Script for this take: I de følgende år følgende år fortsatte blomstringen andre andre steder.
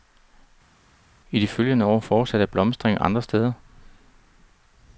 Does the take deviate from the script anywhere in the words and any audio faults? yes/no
yes